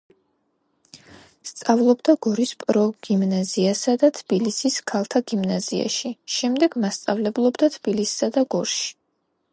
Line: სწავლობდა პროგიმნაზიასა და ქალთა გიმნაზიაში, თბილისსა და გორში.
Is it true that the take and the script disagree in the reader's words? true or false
true